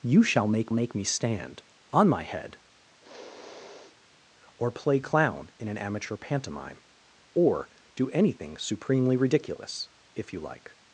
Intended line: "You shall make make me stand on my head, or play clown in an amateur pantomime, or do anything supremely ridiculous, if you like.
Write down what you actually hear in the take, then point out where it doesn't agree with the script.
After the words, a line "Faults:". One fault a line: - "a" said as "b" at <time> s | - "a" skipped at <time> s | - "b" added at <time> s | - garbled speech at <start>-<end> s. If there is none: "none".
"You shall make make me stand on my head, or play clown in an amateur pantomime, or do anything supremely ridiculous, if you like.
Faults:
none